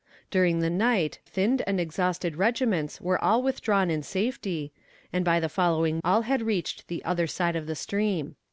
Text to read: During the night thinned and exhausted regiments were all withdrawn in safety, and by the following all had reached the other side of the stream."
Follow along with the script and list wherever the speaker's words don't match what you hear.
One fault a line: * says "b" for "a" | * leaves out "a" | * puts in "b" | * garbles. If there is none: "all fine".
all fine